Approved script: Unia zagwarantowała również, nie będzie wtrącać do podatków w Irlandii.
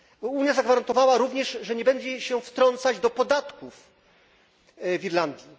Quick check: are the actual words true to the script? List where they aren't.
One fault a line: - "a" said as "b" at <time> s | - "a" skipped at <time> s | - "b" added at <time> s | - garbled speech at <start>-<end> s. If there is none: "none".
- "że" added at 1.6 s
- "się" added at 2.2 s